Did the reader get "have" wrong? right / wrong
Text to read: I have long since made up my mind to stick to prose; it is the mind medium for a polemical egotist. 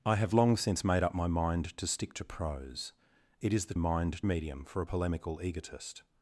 right